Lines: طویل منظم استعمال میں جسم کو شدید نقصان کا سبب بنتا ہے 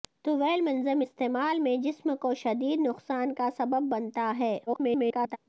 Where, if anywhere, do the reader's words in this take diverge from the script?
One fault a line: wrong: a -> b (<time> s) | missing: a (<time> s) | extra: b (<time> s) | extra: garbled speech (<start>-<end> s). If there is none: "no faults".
extra: garbled speech (4.7-5.4 s)